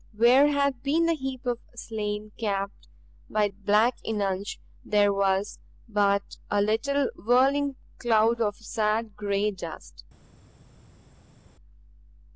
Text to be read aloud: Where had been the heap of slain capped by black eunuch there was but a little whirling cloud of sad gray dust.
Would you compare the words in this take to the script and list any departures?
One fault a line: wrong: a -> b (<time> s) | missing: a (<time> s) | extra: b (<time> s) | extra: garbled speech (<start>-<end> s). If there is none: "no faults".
no faults